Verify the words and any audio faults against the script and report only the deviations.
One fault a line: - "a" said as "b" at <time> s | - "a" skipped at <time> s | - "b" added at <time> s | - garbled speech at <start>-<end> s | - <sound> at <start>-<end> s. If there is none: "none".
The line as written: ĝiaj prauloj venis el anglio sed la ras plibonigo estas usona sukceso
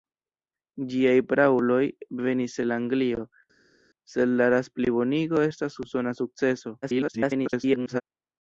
- garbled speech at 6.8-8.0 s